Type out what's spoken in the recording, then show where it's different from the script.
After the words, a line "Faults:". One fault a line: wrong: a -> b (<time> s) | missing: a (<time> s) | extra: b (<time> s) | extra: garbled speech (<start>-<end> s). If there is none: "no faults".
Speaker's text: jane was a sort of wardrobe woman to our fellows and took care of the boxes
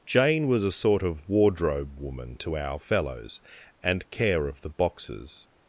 jane was a sort of wardrobe woman to our fellows and care of the boxes
Faults:
missing: took (4.1 s)